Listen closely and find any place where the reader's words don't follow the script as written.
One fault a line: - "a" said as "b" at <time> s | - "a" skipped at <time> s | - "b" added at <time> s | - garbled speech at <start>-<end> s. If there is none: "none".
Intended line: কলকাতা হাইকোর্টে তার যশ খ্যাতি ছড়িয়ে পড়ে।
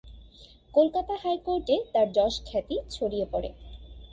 none